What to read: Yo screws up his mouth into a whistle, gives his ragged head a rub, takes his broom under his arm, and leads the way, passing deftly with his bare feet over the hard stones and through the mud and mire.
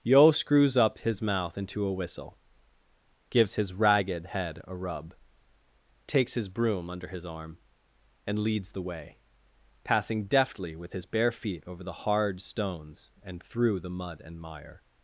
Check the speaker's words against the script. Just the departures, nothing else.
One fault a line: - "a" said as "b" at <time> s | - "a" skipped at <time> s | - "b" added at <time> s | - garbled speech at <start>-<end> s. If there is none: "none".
none